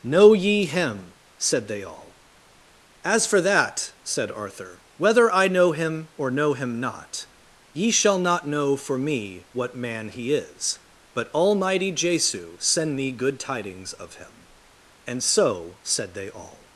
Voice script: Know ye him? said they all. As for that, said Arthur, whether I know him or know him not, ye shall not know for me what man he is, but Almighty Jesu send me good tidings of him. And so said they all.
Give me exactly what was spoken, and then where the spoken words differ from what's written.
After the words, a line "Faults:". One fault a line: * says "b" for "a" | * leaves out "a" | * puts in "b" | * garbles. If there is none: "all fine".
Know ye him? said they all. As for that, said Arthur, whether I know him or know him not, ye shall not know for me what man he is, but Almighty Jesu send me good tidings of him. And so said they all.
Faults:
all fine